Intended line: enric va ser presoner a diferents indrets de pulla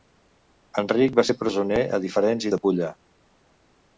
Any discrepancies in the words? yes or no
yes